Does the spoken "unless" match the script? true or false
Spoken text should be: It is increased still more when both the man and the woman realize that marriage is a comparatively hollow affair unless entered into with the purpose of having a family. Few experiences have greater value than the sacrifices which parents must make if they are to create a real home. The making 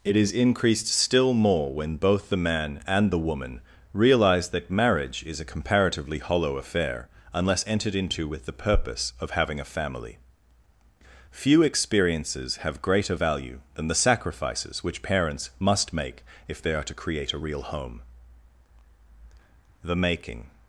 true